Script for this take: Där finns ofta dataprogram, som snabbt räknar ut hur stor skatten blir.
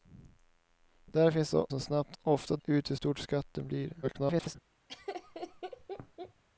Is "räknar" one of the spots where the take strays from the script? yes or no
yes